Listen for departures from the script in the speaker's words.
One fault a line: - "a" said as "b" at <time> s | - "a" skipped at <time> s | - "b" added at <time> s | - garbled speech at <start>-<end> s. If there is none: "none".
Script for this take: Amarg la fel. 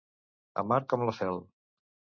- "com" added at 0.9 s